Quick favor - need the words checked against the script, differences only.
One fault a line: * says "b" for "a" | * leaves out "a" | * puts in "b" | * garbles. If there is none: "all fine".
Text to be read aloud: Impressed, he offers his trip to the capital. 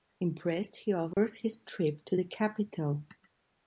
all fine